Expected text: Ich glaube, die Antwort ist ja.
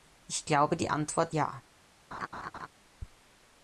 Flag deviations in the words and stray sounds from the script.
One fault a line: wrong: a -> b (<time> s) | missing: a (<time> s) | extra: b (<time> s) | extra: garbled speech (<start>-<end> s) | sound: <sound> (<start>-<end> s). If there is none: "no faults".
missing: ist (1.4 s)
sound: laugh (2.1-2.7 s)